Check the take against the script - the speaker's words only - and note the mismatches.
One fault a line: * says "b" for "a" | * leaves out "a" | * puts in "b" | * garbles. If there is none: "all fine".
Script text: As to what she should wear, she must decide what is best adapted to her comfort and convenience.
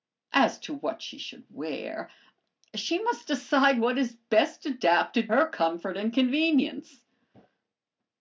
* leaves out "to"